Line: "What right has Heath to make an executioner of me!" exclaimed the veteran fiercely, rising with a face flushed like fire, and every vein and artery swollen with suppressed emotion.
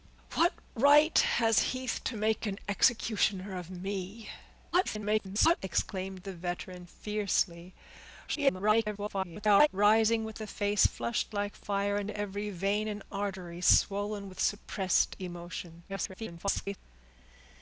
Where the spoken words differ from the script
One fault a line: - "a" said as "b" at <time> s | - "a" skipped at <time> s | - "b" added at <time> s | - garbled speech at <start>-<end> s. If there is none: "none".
- garbled speech at 4.7-5.6 s
- garbled speech at 8.3-9.7 s
- garbled speech at 15.9-16.8 s